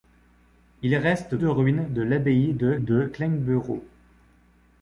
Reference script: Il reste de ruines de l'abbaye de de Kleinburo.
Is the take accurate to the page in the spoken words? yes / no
yes